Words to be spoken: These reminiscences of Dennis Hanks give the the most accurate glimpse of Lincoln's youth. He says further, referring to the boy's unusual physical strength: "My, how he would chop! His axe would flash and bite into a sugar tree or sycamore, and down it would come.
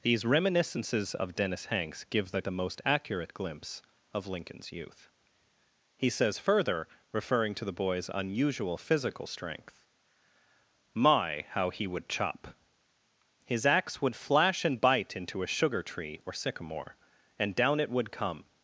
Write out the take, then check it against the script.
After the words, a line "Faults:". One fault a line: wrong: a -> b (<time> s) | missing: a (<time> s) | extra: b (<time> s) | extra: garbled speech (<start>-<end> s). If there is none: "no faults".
These reminiscences of Dennis Hanks give the the most accurate glimpse of Lincoln's youth. He says further, referring to the boy's unusual physical strength: "My, how he would chop! His axe would flash and bite into a sugar tree or sycamore, and down it would come.
Faults:
no faults